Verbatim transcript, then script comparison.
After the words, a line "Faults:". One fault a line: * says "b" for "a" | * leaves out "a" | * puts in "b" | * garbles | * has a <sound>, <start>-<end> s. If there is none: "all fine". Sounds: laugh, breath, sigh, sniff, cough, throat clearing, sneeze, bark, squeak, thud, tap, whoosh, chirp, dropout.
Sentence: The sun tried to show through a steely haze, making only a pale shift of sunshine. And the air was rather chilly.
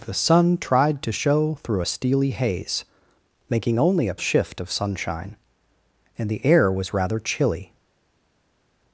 The sun tried to show through a steely haze, making only a shift of sunshine. And the air was rather chilly.
Faults:
* leaves out "pale"